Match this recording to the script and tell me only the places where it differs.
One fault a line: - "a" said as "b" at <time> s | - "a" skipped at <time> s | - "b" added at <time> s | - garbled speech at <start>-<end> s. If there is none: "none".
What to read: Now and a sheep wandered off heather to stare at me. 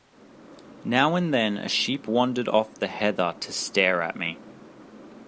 - "then" added at 1.3 s
- "the" added at 2.7 s